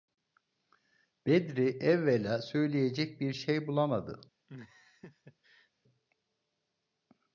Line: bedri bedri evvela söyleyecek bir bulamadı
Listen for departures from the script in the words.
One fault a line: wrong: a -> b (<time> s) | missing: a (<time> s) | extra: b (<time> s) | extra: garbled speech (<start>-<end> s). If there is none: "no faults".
missing: bedri (1.7 s)
extra: şey (3.3 s)